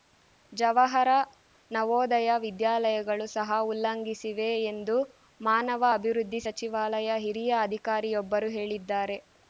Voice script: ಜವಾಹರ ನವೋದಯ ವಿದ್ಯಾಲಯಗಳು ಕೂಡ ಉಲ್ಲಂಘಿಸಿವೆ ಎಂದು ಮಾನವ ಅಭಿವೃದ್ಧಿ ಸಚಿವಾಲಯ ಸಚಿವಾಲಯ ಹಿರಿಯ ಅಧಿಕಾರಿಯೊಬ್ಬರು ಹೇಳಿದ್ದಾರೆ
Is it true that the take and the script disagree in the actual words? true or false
true